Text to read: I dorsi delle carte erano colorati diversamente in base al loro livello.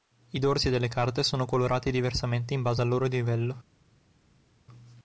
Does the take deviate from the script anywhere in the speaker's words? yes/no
yes